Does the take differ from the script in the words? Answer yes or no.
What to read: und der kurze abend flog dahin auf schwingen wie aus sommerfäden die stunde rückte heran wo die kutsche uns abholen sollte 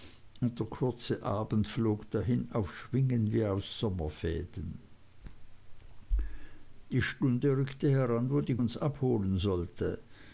yes